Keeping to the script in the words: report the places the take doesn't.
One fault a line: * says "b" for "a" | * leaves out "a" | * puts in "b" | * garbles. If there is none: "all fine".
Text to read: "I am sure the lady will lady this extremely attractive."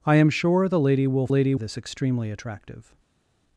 all fine